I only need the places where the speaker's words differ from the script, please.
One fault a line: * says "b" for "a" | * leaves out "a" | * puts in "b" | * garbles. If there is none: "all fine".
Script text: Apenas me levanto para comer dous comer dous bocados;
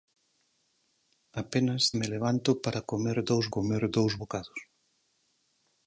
all fine